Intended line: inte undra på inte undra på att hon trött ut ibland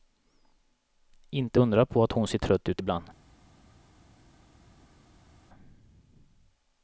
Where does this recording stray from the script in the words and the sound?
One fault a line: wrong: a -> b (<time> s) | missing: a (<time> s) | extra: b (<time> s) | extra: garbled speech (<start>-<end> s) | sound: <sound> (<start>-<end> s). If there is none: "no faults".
missing: inte undra på (2.0 s)
extra: ser (2.3 s)